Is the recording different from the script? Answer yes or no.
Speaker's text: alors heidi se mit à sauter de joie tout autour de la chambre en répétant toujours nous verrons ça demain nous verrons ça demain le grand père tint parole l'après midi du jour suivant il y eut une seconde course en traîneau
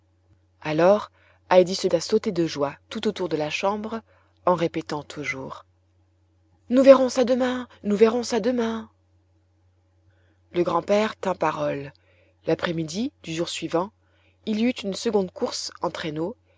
yes